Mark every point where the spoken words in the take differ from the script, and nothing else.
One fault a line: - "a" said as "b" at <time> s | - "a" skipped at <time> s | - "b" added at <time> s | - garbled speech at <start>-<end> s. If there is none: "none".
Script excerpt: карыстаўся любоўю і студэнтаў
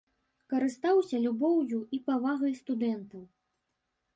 - "павагай" added at 2.1 s